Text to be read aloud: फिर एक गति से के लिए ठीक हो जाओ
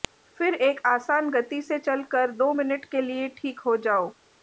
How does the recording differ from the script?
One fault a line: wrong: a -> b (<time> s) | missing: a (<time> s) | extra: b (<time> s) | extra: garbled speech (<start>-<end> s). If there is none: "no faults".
extra: आसान (0.9 s)
extra: चलकर दो मिनट (1.8 s)